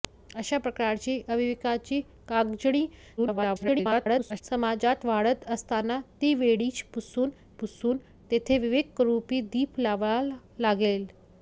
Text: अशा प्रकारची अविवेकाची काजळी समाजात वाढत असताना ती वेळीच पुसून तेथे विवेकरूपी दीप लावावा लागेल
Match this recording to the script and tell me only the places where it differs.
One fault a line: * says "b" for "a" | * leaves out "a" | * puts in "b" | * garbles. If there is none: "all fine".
* garbles
* puts in "पुसून"